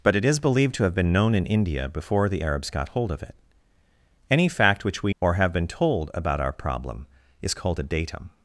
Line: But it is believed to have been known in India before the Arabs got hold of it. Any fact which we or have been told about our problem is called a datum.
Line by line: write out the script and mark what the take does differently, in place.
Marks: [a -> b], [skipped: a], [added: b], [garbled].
But it is believed to have been known in India before the Arabs got hold of it. Any fact which we or have been told about our problem is called a datum.